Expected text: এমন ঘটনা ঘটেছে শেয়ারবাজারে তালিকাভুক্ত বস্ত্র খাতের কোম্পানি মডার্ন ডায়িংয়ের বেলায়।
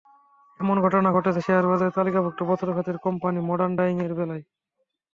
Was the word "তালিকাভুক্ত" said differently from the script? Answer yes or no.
no